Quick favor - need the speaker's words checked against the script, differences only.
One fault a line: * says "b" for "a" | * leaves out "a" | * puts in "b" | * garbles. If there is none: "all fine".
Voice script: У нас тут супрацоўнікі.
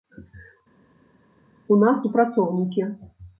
* leaves out "тут"